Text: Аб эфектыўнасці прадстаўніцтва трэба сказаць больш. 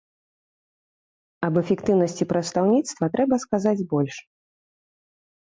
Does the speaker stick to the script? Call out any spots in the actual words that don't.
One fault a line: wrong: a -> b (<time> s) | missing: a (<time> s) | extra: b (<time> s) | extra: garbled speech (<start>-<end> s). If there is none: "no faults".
no faults